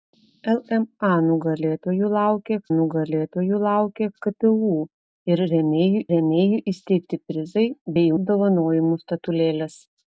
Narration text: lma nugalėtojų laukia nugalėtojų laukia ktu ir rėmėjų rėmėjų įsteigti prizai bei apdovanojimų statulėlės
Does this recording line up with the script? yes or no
yes